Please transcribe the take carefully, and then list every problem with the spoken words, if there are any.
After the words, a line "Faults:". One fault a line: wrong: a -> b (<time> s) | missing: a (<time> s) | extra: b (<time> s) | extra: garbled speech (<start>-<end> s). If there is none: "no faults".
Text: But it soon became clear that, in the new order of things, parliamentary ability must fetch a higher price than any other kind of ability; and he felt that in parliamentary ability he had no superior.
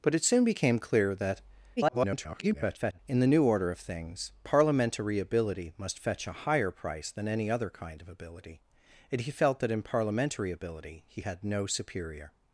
But it soon became clear that, [garbled] in the new order of things, parliamentary ability must fetch a higher price than any other kind of ability; and he felt that in parliamentary ability he had no superior.
Faults:
extra: garbled speech (1.8-3.0 s)